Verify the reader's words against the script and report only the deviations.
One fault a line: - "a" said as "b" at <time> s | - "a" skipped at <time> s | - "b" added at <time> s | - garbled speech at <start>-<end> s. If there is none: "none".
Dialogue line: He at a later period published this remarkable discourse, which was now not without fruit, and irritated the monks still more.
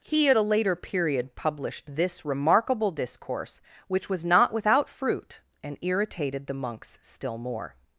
- "now" skipped at 4.2 s